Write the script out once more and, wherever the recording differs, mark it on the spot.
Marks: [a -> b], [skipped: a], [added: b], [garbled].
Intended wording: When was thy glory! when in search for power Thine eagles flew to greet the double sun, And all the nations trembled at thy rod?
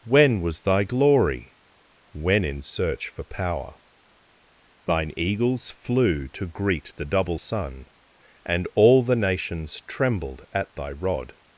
When was thy glory! when in search for power Thine eagles flew to greet the double sun, And all the nations trembled at thy rod?